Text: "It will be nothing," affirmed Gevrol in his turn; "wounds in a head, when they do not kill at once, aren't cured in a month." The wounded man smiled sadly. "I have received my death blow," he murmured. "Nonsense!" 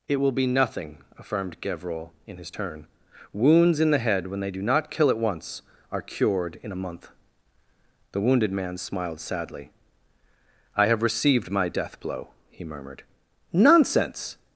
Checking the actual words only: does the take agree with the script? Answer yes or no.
no